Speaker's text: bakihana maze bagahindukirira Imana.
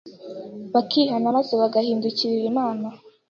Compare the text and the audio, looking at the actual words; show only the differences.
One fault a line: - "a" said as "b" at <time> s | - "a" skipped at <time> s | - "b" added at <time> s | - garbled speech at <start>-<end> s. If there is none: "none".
none